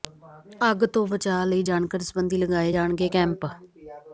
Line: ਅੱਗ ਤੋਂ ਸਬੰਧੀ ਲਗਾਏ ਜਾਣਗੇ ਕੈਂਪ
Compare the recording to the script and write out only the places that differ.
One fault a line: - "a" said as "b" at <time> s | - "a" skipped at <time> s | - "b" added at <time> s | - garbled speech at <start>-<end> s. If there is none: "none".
- "ਬਚਾਅ ਲਈ ਜਾਣਕਾਰੀ" added at 1.1 s